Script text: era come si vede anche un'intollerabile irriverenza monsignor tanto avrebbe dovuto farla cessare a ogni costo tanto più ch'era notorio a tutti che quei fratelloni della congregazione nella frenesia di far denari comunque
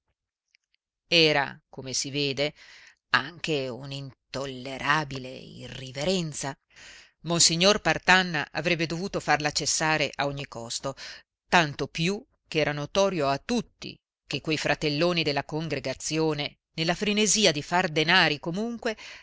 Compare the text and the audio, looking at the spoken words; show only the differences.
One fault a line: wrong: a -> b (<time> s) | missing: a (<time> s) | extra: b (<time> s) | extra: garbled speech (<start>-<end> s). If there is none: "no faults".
wrong: tanto -> partanna (7.8 s)